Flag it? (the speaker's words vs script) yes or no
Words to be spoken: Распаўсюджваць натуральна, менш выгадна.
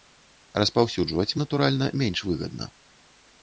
no